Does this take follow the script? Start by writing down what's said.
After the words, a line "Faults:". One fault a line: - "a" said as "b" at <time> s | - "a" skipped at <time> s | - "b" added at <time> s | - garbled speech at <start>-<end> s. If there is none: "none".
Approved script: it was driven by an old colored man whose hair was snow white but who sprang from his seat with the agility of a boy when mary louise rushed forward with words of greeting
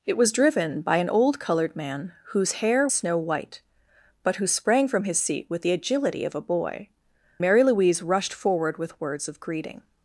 it was driven by an old colored man whose hair snow white but who sprang from his seat with the agility of a boy mary louise rushed forward with words of greeting
Faults:
- "was" skipped at 2.9 s
- "when" skipped at 6.9 s